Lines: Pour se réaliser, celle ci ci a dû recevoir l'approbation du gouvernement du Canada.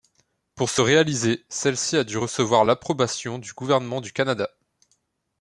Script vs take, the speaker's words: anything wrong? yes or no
yes